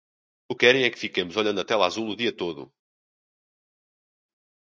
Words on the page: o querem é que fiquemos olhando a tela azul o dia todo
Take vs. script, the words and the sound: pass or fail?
pass